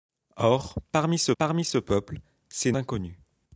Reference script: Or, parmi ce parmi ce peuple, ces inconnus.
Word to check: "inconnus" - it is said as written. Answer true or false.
true